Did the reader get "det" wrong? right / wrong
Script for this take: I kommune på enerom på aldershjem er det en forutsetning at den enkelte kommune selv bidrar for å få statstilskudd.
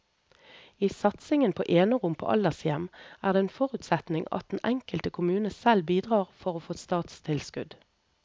right